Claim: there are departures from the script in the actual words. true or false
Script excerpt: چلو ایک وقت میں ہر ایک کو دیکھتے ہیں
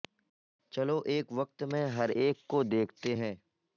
false